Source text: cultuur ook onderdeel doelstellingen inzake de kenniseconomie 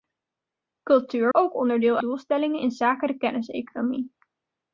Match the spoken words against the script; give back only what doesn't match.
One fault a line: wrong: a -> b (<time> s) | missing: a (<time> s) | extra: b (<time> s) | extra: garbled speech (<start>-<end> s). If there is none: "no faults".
no faults